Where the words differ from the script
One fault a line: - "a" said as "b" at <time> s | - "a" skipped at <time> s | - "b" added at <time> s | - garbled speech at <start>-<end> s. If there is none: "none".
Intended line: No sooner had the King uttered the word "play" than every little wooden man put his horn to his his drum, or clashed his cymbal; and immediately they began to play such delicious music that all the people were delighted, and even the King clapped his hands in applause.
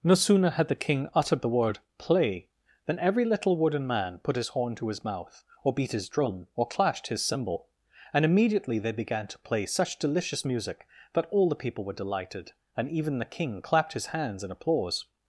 - "mouth or beat" added at 5.0 s